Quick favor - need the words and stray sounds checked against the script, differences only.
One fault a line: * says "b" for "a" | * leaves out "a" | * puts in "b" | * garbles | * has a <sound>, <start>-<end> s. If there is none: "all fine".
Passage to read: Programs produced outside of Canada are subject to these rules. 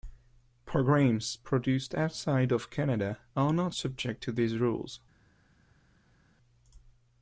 * puts in "not"